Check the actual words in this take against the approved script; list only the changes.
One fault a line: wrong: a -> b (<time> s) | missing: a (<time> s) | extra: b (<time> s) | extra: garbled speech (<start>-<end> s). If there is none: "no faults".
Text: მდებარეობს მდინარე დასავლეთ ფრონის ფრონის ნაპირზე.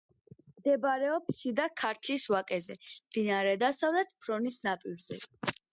extra: შიდა ქართლის ვაკეზე (1.4 s)
missing: ფრონის (4.7 s)